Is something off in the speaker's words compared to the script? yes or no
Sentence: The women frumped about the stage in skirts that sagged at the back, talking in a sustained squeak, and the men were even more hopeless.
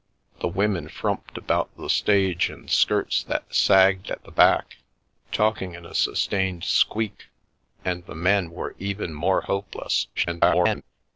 yes